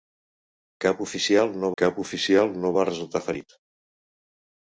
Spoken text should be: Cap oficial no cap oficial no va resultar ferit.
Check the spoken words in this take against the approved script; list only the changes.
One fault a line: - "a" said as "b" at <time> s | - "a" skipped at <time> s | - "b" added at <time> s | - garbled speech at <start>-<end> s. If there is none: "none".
none